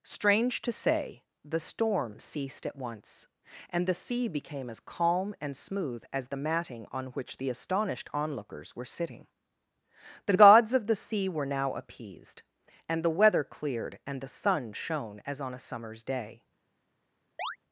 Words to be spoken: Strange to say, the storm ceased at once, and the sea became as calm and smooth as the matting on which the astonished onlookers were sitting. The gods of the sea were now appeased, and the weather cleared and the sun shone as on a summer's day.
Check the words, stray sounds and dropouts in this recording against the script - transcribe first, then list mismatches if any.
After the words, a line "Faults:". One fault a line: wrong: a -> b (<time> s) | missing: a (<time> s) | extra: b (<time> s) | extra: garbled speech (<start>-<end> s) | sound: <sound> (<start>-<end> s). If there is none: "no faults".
Strange to say, the storm ceased at once, and the sea became as calm and smooth as the matting on which the astonished onlookers were sitting. The gods of the sea were now appeased, and the weather cleared and the sun shone as on a summer's day.
Faults:
sound: chirp (17.4-17.6 s)